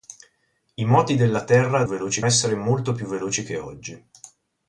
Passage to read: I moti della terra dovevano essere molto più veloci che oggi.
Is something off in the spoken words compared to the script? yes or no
yes